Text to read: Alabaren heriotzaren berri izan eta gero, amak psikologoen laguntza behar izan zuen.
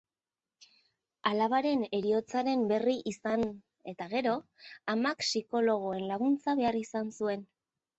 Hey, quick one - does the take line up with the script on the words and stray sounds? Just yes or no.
yes